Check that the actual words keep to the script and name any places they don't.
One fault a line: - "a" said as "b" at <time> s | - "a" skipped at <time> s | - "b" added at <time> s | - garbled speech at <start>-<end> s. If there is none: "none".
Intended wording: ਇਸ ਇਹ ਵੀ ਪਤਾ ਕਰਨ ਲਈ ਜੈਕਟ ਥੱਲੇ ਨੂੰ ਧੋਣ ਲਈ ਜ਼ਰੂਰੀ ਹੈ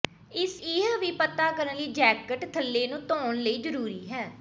none